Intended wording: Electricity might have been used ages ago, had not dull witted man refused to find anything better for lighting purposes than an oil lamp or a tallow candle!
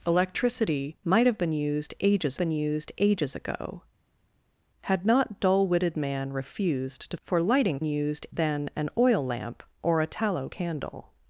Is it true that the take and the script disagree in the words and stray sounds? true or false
true